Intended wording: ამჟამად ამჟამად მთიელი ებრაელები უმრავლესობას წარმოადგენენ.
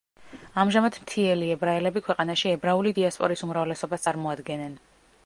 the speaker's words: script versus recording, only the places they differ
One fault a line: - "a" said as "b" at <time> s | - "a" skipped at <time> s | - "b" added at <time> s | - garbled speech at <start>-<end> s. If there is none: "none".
- "ამჟამად" skipped at 0.9 s
- "ქვეყანაში ებრაული დიასპორის" added at 2.1 s